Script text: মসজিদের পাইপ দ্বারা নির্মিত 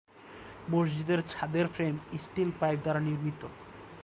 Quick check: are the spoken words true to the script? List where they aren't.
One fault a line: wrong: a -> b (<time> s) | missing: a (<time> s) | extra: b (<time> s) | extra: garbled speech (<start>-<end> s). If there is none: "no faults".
extra: ছাদের ফ্রেম স্টিল (1.3 s)